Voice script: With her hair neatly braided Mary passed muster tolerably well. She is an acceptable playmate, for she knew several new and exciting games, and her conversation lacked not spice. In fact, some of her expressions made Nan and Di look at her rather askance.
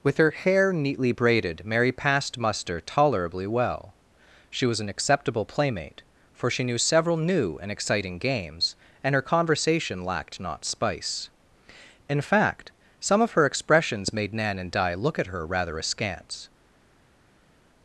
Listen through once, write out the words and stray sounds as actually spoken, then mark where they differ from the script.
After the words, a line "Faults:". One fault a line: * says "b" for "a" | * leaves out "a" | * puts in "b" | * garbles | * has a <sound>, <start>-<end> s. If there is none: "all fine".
With her hair neatly braided Mary passed muster tolerably well. She was an acceptable playmate, for she knew several new and exciting games, and her conversation lacked not spice. In fact, some of her expressions made Nan and Di look at her rather askance.
Faults:
* says "was" for "is"